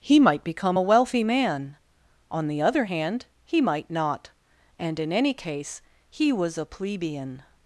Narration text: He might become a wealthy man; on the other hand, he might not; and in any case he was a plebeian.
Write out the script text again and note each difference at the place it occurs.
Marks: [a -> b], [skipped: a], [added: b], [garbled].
He might become a wealthy man; on the other hand, he might not; and in any case he was a plebeian.